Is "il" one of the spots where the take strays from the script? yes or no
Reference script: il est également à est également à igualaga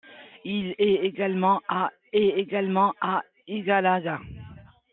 no